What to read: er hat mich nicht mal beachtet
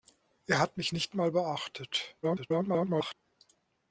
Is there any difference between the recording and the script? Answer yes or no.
yes